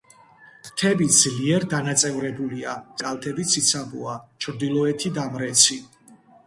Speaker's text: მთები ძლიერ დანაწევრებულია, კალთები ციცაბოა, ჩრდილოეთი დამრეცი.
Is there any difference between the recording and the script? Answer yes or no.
no